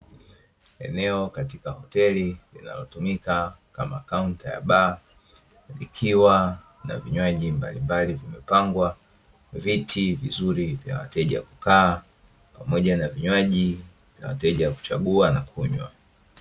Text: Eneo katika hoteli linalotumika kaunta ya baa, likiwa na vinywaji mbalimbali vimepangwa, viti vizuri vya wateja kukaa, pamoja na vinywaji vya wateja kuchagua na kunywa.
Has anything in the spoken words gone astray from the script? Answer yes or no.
yes